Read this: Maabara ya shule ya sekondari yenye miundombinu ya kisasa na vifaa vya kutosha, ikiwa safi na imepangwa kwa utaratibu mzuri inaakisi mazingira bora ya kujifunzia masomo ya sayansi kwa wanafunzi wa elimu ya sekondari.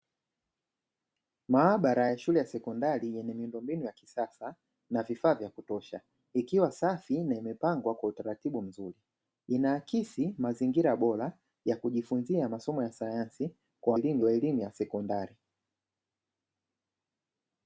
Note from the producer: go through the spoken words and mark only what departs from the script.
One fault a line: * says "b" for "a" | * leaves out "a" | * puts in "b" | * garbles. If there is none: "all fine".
* says "elimu" for "wanafunzi"